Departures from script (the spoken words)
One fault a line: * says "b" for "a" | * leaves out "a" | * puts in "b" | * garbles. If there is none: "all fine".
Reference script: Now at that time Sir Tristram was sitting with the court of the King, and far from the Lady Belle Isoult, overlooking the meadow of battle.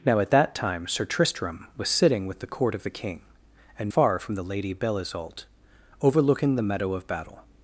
all fine